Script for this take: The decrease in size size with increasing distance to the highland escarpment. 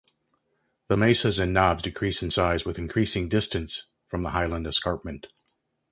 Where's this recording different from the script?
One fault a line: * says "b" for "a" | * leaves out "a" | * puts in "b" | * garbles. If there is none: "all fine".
* puts in "mesas and knobs"
* leaves out "size"
* says "from" for "to"